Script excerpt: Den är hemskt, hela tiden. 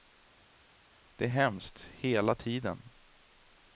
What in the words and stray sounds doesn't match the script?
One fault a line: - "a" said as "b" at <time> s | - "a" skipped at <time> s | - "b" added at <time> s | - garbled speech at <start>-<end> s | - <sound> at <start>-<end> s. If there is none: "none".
- "Den" said as "Det" at 1.1 s